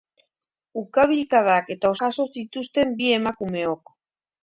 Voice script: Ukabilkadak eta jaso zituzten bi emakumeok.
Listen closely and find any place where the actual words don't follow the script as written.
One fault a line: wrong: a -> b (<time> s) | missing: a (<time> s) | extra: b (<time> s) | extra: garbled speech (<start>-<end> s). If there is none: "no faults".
no faults